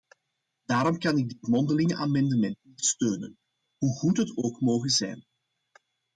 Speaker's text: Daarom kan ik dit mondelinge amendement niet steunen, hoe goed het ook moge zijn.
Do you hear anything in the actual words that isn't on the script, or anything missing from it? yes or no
no